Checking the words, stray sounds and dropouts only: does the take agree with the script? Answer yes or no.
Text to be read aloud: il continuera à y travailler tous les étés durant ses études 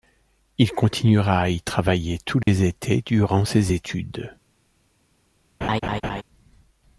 no